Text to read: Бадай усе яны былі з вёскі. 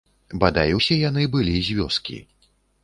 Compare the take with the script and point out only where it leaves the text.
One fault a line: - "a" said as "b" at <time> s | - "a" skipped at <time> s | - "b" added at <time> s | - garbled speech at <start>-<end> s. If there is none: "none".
none